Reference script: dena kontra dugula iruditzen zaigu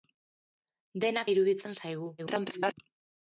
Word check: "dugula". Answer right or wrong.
wrong